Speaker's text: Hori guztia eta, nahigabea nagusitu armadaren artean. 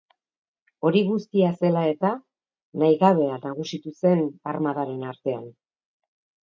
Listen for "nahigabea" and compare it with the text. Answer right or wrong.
right